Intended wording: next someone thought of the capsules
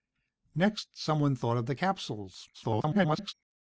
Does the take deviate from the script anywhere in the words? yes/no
yes